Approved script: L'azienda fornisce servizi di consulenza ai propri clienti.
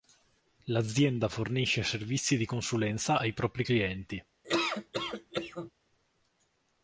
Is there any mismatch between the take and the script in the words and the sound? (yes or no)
yes